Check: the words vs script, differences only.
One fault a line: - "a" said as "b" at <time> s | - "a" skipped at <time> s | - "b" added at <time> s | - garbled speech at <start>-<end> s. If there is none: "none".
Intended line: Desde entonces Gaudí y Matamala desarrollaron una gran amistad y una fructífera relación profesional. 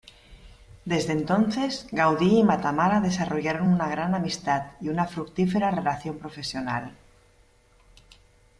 none